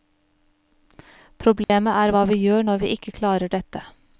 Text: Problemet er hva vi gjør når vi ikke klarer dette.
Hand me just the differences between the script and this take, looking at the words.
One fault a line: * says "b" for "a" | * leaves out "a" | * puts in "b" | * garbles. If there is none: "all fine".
all fine